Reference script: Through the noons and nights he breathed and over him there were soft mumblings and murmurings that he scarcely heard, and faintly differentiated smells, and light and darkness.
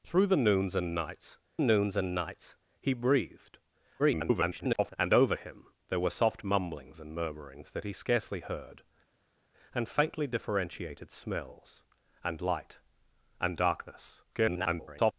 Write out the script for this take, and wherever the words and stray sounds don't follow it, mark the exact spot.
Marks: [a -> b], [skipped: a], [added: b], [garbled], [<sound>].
Through the noons and nights [added: noons and nights] he breathed [garbled] and over him there were soft mumblings and murmurings that he scarcely heard, and faintly differentiated smells, and light and darkness. [garbled]